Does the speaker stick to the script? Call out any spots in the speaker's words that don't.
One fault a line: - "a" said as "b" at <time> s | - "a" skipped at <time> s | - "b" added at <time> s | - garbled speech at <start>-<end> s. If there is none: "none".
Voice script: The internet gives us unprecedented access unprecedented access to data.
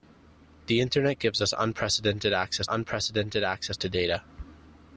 none